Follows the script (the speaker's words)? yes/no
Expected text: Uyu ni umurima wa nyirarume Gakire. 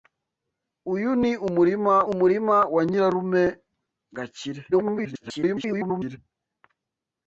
no